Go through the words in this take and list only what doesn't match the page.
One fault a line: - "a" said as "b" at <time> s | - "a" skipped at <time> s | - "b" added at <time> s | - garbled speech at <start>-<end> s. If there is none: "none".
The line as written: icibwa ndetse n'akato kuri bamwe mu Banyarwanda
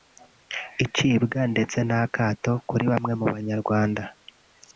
none